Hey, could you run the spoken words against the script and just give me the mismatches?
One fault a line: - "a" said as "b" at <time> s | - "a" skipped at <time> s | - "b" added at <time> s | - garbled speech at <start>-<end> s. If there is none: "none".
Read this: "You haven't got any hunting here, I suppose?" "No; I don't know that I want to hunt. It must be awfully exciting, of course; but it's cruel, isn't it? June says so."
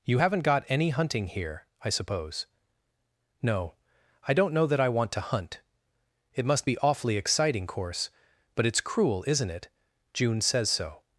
- "of" skipped at 7.7 s